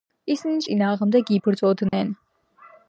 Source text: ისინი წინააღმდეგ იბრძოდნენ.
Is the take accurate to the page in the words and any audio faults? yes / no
no